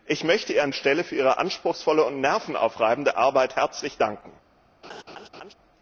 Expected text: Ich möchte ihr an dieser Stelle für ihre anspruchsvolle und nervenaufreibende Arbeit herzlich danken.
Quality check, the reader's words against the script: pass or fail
fail